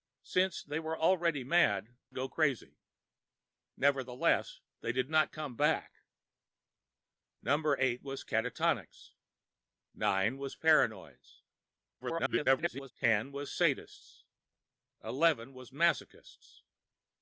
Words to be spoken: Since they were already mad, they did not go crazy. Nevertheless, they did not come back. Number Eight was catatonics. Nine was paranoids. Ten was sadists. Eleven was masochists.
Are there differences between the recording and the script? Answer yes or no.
yes